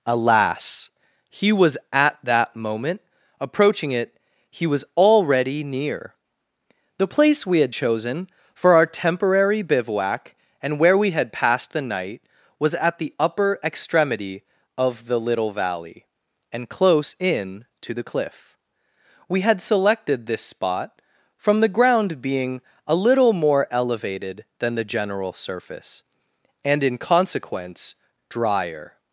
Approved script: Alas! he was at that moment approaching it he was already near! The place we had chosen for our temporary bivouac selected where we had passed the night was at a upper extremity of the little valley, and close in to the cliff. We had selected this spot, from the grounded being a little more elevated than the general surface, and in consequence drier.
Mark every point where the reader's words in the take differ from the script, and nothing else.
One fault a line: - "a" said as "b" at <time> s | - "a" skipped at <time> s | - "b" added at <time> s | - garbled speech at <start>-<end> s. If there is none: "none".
- "selected" said as "and" at 10.6 s
- "a" said as "the" at 13.0 s
- "grounded" said as "ground" at 21.7 s